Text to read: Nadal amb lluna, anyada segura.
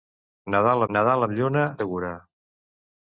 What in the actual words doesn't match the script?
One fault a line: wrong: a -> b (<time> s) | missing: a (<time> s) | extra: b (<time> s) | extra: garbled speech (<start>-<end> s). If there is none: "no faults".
extra: nadal (0.9 s)
missing: anyada (1.6 s)